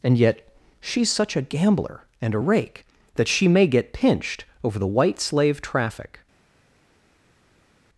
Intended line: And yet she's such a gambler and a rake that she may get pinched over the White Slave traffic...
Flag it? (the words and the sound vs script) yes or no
no